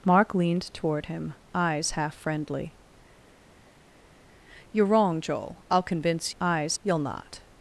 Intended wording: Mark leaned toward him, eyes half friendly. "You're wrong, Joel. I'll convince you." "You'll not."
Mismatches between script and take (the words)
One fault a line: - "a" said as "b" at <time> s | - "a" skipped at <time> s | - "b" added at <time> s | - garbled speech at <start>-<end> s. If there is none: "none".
- "you" said as "eyes" at 6.4 s